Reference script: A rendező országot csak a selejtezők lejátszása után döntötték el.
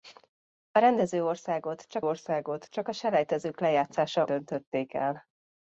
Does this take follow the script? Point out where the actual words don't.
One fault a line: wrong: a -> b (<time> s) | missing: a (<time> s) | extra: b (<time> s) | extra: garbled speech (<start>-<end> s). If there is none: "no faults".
extra: országot csak (2.0 s)
missing: után (4.3 s)